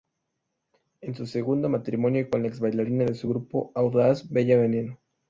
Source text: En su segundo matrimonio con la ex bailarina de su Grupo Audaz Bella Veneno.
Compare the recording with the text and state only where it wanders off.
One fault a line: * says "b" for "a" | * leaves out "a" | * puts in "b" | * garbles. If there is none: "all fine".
all fine